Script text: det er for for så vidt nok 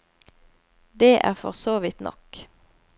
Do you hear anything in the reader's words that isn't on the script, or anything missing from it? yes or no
yes